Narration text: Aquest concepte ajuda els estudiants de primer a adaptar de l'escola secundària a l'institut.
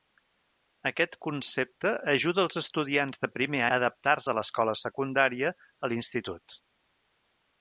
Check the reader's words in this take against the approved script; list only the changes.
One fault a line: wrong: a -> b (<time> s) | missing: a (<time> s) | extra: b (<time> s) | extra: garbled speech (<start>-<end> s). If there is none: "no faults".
no faults